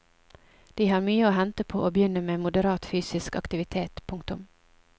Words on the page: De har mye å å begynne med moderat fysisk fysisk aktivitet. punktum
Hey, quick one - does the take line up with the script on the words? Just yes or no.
no